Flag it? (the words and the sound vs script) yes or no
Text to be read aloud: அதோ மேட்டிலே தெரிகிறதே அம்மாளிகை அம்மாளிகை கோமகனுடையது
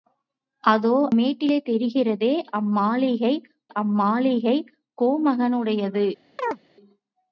yes